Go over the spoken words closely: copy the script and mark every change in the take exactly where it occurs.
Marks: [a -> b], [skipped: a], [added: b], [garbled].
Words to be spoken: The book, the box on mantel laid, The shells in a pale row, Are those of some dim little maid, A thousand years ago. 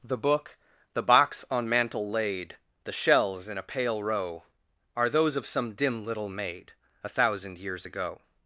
The book, the box on mantel laid, The shells in a pale row, Are those of some dim little maid, A thousand years ago.